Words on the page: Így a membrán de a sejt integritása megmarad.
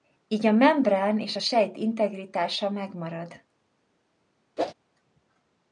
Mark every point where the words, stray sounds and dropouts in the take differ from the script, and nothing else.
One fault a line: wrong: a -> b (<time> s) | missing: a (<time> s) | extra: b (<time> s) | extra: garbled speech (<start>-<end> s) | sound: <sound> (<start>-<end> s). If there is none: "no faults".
wrong: de -> és (1.2 s)
sound: whoosh (4.6-4.7 s)